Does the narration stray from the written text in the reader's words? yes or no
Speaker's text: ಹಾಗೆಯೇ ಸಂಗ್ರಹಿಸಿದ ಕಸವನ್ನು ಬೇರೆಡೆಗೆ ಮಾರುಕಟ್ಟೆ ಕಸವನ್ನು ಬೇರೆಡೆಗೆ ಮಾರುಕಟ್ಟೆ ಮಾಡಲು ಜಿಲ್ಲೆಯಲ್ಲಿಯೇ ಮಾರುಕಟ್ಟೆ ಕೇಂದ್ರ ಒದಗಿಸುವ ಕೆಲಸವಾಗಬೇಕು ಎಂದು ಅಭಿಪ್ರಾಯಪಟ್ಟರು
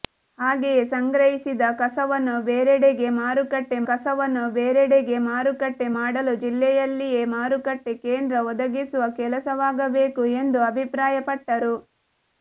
no